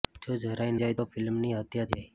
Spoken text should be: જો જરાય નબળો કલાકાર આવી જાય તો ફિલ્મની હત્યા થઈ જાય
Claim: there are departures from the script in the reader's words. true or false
true